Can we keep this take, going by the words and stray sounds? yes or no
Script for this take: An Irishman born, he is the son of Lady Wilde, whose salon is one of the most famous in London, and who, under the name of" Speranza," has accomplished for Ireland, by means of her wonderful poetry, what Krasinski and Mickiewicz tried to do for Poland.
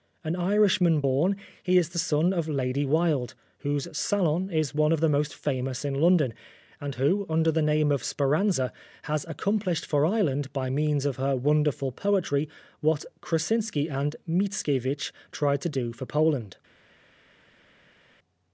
yes